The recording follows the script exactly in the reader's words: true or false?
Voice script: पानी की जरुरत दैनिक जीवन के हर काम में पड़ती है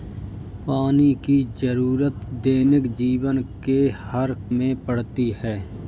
false